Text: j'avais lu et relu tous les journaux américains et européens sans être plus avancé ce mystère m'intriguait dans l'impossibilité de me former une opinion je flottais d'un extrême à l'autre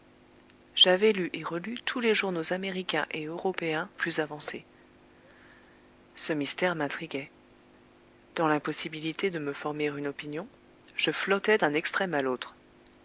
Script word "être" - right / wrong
wrong